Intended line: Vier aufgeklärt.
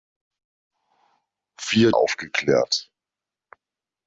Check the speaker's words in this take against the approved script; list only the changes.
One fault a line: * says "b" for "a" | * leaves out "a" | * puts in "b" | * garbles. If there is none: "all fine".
all fine